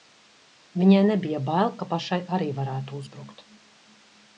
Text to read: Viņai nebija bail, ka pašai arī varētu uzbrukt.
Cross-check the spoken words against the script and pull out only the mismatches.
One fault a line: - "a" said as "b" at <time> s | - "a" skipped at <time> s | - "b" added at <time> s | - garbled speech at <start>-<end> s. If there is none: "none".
none